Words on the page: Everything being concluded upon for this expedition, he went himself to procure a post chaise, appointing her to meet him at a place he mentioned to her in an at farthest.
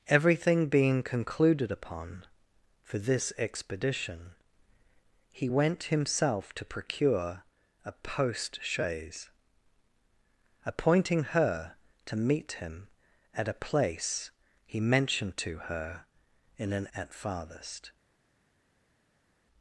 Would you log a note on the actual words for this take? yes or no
no